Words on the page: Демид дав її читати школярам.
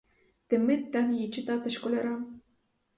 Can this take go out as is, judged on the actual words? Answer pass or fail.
pass